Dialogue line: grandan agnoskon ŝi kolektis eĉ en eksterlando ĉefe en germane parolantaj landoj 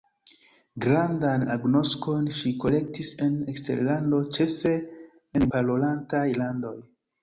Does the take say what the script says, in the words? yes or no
no